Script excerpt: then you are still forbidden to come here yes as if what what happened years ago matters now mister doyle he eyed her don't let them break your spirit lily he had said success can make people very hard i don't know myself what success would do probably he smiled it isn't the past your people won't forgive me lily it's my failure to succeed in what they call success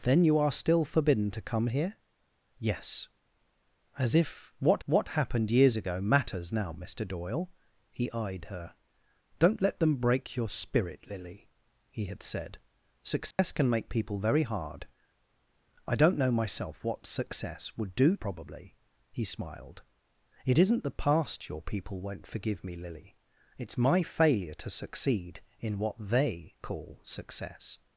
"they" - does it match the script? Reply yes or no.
yes